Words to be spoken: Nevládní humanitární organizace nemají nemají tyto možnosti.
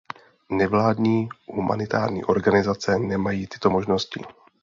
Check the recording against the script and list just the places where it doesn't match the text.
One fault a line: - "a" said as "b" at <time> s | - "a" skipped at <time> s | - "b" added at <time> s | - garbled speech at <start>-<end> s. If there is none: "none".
- "nemají" skipped at 3.5 s